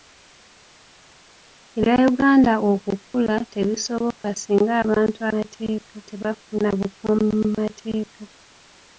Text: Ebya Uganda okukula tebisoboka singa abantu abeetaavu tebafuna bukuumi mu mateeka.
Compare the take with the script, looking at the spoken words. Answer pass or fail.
fail